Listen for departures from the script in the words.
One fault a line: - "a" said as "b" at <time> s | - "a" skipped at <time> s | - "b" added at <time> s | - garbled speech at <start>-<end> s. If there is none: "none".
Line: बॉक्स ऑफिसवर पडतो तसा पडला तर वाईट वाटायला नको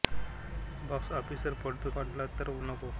- "तसा" skipped at 1.9 s
- "वाईट वाटायला" skipped at 2.5 s